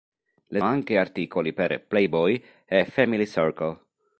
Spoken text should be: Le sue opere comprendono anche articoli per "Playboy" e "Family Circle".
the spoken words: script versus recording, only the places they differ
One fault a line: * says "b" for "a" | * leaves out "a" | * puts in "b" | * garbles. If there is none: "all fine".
* leaves out "sue opere comprendono"